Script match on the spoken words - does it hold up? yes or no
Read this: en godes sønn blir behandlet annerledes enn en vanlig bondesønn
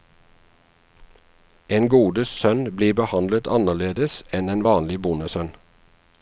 yes